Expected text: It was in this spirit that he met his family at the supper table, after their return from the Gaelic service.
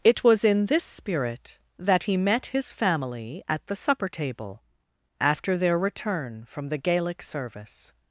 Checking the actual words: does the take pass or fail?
pass